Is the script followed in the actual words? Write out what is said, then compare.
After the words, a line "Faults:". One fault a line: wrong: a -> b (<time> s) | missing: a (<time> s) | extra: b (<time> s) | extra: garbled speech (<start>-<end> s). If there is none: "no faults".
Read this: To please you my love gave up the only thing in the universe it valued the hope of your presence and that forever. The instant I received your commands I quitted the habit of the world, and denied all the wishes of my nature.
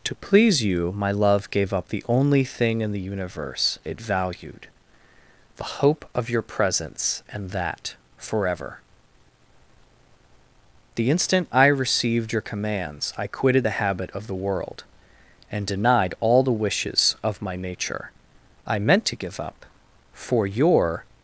To please you my love gave up the only thing in the universe it valued the hope of your presence and that forever. The instant I received your commands I quitted the habit of the world, and denied all the wishes of my nature. I meant to give up, for your
Faults:
extra: I meant to give up for your (18.7 s)